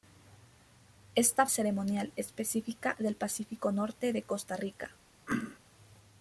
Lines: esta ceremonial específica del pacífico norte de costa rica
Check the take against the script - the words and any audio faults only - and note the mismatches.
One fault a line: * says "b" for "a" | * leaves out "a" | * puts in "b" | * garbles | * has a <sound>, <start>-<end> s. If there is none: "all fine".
* has a throat clearing, 5.3-5.6 s